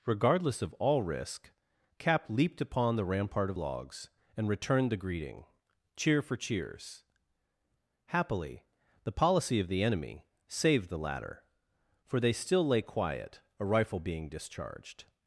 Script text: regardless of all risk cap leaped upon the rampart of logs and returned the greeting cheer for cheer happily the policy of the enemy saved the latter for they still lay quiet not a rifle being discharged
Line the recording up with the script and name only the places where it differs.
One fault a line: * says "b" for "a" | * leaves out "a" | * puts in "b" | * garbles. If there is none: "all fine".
* says "cheers" for "cheer"
* leaves out "not"